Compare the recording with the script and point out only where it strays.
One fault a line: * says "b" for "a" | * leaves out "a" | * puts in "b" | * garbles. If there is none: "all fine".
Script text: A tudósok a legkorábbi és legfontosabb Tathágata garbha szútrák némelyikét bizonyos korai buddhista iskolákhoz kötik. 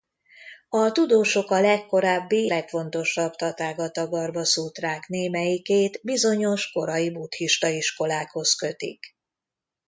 * leaves out "és"